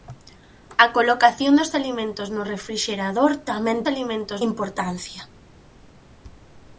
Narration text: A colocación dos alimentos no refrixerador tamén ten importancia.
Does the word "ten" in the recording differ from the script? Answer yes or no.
yes